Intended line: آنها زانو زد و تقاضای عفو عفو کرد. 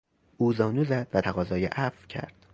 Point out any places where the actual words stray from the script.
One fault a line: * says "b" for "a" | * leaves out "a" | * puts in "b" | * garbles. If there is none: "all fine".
* says "او" for "آنها"
* leaves out "عفو"